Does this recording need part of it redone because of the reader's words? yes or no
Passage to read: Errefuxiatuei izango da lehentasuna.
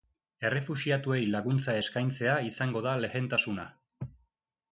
yes